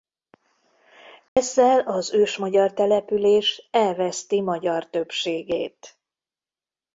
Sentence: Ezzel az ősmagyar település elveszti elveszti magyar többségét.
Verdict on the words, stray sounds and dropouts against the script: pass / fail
fail